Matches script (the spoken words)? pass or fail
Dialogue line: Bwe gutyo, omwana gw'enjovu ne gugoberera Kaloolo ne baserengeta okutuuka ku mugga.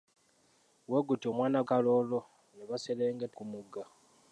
fail